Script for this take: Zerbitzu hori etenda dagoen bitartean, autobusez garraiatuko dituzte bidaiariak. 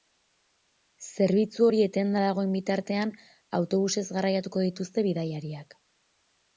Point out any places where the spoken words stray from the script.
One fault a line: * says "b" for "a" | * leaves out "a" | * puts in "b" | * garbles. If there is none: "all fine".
all fine